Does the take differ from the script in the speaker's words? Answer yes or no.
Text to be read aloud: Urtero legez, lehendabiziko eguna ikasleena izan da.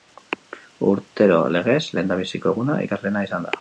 no